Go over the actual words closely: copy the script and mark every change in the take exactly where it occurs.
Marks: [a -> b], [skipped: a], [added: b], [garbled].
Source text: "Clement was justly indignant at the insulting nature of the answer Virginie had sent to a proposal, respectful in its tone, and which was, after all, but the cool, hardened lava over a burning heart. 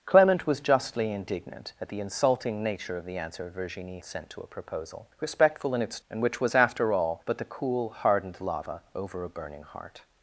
"Clement was justly indignant at the insulting nature of the answer Virginie [skipped: had] sent to a proposal, respectful in its [skipped: tone,] and which was, after all, but the cool, hardened lava over a burning heart.